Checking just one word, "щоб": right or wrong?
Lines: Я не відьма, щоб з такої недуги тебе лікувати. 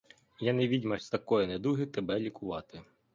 wrong